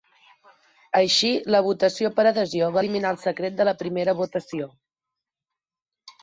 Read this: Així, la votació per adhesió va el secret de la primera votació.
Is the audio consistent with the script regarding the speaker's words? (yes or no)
no